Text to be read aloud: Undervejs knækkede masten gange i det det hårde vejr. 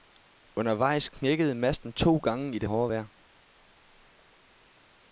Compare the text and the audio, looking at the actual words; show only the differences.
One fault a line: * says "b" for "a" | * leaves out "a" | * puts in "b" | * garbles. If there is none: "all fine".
* puts in "to"
* leaves out "det"